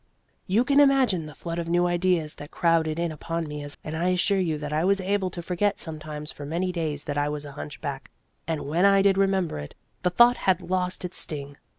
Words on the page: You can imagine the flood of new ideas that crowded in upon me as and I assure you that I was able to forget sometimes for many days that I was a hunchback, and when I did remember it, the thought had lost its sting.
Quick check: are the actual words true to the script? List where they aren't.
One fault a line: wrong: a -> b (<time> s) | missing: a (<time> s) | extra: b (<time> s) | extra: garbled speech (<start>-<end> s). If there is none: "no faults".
no faults